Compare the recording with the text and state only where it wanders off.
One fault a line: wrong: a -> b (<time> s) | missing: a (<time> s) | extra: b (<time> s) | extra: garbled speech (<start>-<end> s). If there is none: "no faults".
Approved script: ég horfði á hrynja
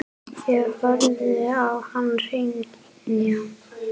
extra: hann (1.9 s)